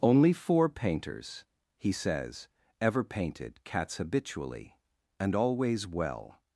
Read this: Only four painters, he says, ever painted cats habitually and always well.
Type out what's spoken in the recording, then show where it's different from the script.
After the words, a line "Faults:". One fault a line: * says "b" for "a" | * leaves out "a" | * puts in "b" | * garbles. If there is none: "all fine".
Only four painters, he says, ever painted cats habitually and always well.
Faults:
all fine